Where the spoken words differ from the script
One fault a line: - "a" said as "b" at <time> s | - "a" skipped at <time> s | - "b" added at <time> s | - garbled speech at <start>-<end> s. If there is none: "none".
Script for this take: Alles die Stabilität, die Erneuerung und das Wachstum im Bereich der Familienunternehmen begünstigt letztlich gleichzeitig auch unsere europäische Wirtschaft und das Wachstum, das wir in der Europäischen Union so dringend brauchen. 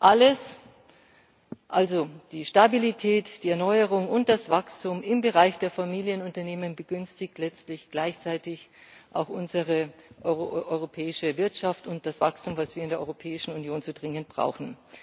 - "also" added at 1.7 s